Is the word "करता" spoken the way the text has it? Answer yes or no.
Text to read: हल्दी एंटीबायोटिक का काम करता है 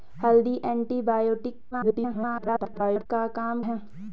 no